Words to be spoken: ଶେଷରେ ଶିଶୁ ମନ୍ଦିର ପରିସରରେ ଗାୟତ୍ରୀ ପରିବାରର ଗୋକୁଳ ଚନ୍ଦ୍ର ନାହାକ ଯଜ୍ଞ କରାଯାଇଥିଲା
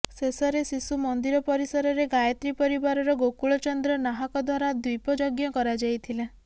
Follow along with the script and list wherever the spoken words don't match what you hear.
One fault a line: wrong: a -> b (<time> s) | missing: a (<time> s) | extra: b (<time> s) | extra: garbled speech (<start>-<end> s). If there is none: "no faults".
extra: ଦ୍ୱାରା ଦ୍ୱୀପ (4.5 s)